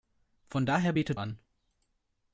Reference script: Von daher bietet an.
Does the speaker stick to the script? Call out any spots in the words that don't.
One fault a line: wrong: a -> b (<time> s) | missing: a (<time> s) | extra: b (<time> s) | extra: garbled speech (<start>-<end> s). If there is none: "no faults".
no faults